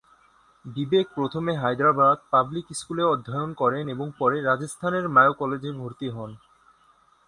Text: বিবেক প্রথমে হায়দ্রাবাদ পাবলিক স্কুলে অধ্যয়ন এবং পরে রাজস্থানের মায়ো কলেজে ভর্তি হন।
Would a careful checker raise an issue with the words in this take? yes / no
yes